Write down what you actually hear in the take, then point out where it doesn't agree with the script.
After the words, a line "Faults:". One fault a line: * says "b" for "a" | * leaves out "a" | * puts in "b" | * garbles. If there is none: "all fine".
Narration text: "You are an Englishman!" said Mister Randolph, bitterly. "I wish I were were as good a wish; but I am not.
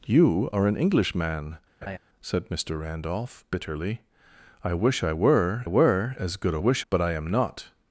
"You are an Englishman!" said Mister Randolph, bitterly. "I wish I were were as good a wish; but I am not.
Faults:
all fine